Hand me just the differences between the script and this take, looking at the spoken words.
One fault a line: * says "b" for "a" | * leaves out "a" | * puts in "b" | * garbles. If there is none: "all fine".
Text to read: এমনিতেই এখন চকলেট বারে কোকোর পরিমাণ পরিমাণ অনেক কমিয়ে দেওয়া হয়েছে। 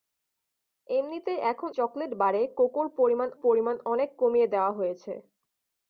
all fine